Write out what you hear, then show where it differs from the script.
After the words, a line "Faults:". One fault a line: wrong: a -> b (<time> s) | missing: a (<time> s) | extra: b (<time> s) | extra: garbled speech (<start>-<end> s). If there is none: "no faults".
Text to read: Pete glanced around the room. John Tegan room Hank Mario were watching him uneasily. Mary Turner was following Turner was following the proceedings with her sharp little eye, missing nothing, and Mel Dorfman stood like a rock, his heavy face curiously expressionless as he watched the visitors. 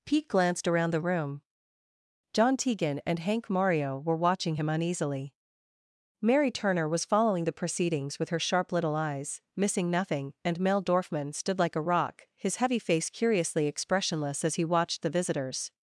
Pete glanced around the room. John Tegan and Hank Mario were watching him uneasily. Mary Turner was following the proceedings with her sharp little eyes, missing nothing, and Mel Dorfman stood like a rock, his heavy face curiously expressionless as he watched the visitors.
Faults:
wrong: room -> and (3.0 s)
missing: Turner was following (7.4 s)
wrong: eye -> eyes (8.9 s)